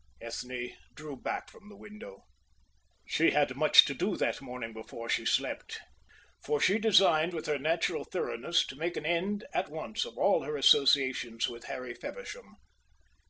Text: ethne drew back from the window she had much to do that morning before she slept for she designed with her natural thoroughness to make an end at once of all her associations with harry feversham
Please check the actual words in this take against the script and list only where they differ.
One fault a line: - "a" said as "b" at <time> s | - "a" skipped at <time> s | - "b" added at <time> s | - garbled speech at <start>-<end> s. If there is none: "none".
none